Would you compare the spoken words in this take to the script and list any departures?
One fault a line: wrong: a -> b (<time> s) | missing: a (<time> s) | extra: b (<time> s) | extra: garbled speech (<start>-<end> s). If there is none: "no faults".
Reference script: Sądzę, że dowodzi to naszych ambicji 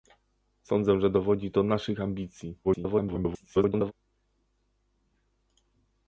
extra: garbled speech (2.6-3.9 s)